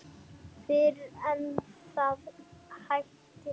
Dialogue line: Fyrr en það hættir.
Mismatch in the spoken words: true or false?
false